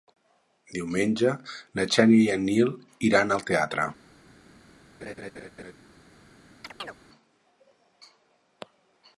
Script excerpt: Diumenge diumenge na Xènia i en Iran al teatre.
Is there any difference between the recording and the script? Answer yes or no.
yes